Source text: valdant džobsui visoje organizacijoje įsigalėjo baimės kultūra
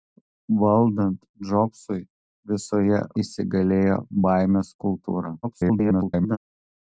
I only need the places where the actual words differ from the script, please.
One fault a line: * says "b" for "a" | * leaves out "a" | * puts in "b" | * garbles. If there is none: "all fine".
* leaves out "organizacijoje"
* garbles